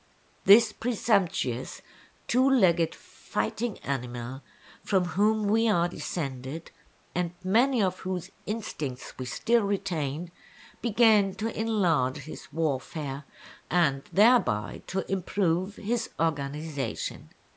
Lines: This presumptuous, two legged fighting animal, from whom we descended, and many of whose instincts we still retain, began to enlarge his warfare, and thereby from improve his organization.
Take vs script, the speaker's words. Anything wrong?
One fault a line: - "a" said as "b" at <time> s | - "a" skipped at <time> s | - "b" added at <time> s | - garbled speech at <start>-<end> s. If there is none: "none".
- "are" added at 5.7 s
- "from" said as "to" at 14.9 s